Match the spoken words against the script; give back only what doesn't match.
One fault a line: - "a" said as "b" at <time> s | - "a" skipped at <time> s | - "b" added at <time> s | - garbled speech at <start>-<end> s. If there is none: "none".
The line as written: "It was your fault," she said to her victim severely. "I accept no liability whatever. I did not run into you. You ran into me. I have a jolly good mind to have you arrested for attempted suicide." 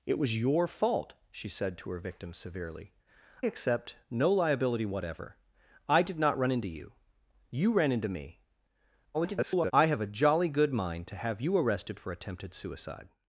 - "I" skipped at 2.9 s
- garbled speech at 9.1-9.7 s